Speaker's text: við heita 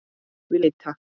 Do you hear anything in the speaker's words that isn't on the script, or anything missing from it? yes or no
no